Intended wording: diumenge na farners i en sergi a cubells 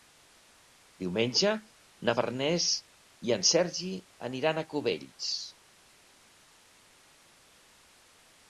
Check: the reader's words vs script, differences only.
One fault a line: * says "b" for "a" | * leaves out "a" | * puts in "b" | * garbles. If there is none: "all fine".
* puts in "aniran"